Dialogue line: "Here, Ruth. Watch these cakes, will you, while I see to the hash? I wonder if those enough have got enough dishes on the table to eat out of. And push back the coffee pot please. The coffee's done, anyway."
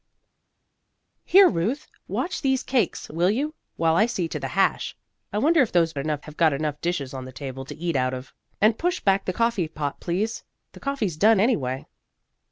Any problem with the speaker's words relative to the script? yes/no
no